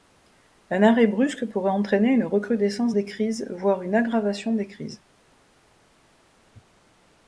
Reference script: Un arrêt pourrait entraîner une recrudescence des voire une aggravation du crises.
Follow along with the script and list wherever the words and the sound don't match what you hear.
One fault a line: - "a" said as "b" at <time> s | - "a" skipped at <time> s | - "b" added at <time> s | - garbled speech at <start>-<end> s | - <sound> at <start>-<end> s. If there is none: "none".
- "brusque" added at 1.1 s
- "crises" added at 3.0 s
- "du" said as "des" at 4.5 s